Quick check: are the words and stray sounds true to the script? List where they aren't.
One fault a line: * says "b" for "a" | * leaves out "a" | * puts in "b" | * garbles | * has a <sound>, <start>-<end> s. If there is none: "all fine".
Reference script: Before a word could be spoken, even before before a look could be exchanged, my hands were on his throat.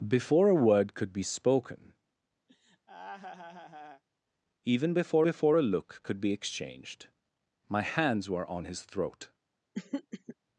* has a laugh, 2.5-4.0 s
* has a throat clearing, 9.7-10.4 s